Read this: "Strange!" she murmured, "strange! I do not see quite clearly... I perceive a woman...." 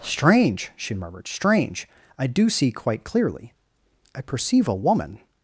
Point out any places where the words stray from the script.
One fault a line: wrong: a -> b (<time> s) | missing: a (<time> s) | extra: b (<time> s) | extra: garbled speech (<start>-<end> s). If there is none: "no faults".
missing: not (2.5 s)